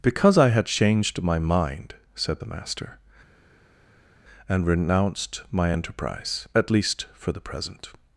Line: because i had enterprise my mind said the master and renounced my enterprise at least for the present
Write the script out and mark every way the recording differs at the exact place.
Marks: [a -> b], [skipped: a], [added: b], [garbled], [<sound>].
because i had [enterprise -> changed] my mind said the master and renounced my enterprise at least for the present